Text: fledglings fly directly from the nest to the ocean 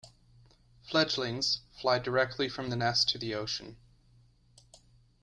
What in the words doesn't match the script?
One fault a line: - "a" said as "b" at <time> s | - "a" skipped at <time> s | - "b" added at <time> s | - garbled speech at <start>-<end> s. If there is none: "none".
none